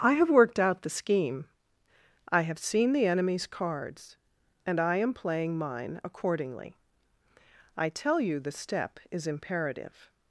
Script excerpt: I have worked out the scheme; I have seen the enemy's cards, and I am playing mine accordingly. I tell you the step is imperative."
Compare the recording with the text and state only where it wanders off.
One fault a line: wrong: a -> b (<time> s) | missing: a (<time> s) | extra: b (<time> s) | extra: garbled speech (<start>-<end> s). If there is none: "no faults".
no faults